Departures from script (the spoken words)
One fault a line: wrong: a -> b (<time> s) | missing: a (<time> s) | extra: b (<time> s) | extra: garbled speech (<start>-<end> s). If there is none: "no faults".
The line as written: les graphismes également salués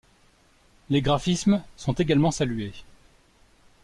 extra: sont (1.8 s)